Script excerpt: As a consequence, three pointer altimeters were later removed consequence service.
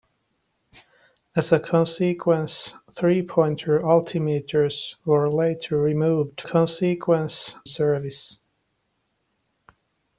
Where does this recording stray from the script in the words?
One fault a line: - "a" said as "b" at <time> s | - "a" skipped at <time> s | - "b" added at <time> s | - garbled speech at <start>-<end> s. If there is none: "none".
none